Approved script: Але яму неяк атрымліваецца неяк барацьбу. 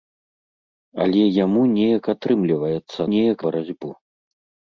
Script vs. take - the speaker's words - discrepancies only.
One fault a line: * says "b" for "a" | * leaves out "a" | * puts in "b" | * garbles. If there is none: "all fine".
all fine